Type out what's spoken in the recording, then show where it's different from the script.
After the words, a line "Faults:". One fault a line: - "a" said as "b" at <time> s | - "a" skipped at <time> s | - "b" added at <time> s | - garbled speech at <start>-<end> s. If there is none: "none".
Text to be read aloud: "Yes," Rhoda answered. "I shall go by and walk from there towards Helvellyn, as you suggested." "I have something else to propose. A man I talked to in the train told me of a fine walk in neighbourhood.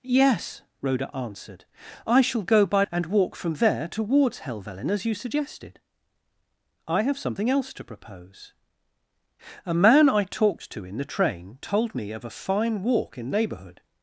"Yes," Rhoda answered. "I shall go by and walk from there towards Helvellyn, as you suggested." "I have something else to propose. A man I talked to in the train told me of a fine walk in neighbourhood.
Faults:
none